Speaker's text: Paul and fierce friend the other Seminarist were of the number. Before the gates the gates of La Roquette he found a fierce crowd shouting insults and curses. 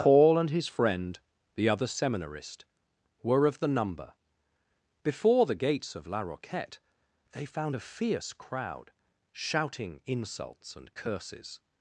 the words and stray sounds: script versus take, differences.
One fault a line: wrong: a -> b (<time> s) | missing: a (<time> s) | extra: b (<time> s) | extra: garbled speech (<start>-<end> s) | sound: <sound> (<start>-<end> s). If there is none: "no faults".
wrong: fierce -> his (0.5 s)
missing: the gates (5.9 s)
wrong: he -> they (7.3 s)